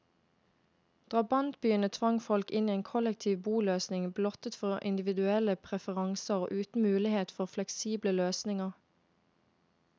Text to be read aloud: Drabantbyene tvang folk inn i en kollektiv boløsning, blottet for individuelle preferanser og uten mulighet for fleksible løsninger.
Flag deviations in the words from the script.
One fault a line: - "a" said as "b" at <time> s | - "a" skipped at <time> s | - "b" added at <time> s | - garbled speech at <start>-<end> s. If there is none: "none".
none